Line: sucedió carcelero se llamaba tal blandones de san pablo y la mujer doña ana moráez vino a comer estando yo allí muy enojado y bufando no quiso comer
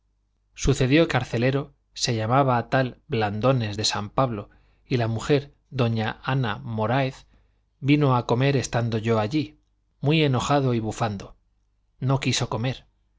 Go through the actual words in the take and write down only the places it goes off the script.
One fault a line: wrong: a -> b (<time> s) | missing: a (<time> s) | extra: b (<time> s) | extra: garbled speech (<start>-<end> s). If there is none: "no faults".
no faults